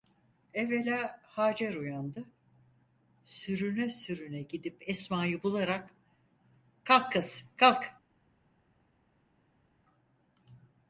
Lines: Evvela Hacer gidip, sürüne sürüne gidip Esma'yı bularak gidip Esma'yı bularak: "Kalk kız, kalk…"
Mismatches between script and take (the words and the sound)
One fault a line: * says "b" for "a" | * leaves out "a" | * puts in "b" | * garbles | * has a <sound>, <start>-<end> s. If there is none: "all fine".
* says "uyandı" for "gidip"
* leaves out "gidip Esma'yı bularak"